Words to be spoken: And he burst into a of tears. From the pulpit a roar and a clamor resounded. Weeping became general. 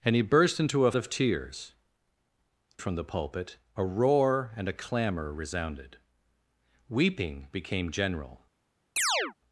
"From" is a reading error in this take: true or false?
false